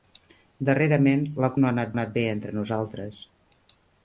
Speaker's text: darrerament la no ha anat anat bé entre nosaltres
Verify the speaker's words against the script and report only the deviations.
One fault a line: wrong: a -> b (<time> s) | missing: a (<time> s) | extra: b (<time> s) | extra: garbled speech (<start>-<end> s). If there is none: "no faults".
no faults